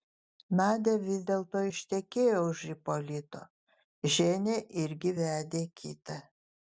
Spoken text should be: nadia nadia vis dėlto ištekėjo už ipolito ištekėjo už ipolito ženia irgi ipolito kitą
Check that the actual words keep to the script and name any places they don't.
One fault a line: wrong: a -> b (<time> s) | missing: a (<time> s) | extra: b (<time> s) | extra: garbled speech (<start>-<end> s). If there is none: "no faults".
missing: nadia (0.9 s)
missing: ištekėjo už ipolito (3.4 s)
wrong: ipolito -> vedė (5.2 s)